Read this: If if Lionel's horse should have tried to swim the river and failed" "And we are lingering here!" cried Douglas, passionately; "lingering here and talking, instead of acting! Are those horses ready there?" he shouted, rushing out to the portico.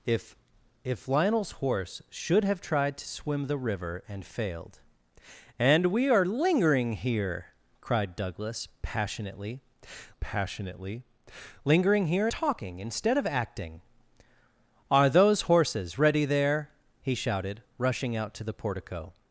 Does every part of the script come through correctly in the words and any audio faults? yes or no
no